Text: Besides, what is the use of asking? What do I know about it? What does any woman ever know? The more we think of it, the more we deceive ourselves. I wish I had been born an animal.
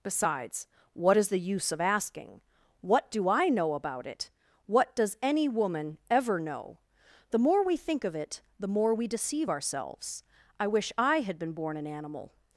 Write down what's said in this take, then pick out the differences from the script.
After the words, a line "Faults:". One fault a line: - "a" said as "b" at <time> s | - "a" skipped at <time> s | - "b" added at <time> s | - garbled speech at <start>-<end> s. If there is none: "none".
Besides, what is the use of asking? What do I know about it? What does any woman ever know? The more we think of it, the more we deceive ourselves. I wish I had been born an animal.
Faults:
none